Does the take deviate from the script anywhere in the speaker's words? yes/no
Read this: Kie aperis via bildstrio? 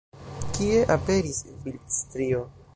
yes